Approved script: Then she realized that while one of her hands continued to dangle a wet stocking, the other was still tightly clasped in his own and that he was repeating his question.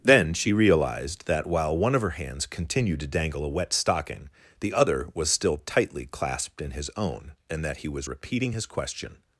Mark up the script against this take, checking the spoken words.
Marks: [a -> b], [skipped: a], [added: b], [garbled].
Then she realized that while one of her hands continued to dangle a wet stocking, the other was still tightly clasped in his own and that he was repeating his question.